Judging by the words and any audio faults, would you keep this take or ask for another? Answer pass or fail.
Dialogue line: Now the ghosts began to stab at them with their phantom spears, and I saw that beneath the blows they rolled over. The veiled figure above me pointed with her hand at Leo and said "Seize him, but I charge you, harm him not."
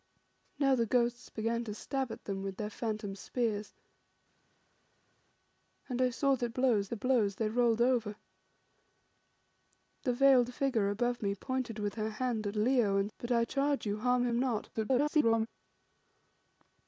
fail